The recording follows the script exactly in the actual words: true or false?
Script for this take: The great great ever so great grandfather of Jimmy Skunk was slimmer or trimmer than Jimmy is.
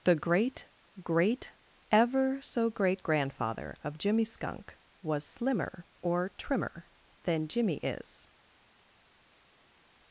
true